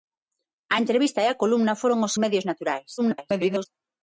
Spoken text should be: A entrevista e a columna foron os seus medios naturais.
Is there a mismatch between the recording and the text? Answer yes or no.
yes